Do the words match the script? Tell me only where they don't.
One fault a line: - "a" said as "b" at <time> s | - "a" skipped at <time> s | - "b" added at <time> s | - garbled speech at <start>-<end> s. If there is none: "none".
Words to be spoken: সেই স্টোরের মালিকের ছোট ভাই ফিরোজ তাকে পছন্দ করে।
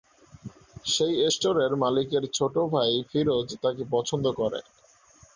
none